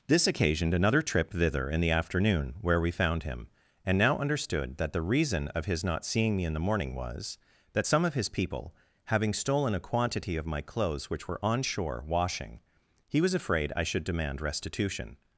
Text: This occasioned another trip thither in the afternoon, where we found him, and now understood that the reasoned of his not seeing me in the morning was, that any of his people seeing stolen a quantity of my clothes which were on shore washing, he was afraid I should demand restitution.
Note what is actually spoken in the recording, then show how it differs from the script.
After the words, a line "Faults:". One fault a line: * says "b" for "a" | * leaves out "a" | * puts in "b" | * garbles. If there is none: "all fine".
This occasioned another trip thither in the afternoon, where we found him, and now understood that the reason of his not seeing me in the morning was, that some of his people having stolen a quantity of my clothes which were on shore washing, he was afraid I should demand restitution.
Faults:
* says "reason" for "reasoned"
* says "some" for "any"
* says "having" for "seeing"